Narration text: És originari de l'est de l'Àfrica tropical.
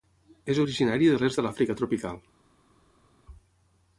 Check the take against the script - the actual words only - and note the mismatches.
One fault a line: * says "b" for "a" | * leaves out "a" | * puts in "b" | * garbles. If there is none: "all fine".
all fine